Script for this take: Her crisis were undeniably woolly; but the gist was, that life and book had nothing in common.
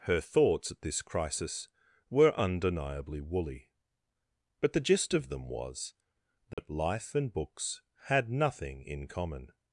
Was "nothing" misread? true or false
false